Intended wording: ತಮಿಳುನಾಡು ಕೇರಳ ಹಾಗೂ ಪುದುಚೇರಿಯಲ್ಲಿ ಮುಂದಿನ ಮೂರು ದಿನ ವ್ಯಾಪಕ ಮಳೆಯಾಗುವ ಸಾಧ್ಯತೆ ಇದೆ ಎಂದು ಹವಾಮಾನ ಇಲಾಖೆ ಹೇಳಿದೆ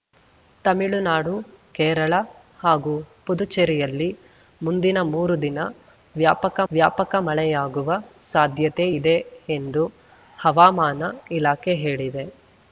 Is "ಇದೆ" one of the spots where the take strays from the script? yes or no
no